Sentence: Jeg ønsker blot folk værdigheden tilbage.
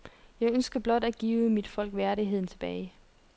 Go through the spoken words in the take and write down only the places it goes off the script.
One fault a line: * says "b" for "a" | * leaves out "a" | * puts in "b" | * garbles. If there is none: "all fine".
* puts in "at give mit"